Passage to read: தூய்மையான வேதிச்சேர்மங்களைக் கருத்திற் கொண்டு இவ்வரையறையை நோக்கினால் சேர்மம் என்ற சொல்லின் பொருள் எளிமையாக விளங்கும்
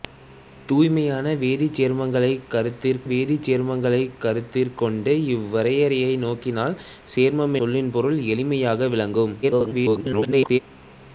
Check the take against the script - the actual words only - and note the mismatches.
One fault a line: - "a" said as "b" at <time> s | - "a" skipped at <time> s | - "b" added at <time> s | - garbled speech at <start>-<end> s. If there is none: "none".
- "வேதிச்சேர்மங்களைக் கருத்திற்" added at 3.0 s
- "என்ற" skipped at 7.6 s
- garbled speech at 9.4-10.6 s